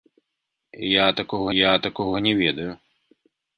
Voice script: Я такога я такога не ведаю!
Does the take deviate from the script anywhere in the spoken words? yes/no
no